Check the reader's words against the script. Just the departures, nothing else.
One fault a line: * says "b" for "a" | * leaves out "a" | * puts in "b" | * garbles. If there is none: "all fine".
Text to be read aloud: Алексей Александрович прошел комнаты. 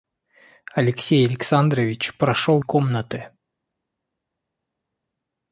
all fine